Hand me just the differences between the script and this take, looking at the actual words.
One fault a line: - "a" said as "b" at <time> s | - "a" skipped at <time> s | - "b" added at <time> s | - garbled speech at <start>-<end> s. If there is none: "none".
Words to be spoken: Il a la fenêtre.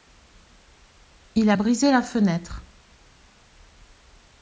- "brisé" added at 1.5 s